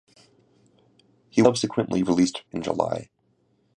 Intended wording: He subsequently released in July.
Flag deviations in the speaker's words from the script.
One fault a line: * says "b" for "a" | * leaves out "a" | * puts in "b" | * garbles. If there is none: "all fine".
all fine